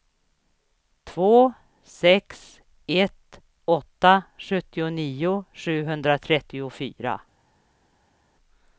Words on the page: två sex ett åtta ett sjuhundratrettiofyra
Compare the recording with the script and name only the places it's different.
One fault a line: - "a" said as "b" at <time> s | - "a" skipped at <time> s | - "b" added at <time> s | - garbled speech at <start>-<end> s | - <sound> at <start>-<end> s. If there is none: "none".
- "ett" said as "sjuttionio" at 4.4 s